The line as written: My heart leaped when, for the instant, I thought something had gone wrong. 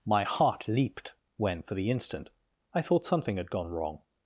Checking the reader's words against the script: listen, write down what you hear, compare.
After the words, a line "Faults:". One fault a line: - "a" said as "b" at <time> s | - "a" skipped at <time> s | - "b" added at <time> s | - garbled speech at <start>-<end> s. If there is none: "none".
My heart leaped when, for the instant, I thought something had gone wrong.
Faults:
none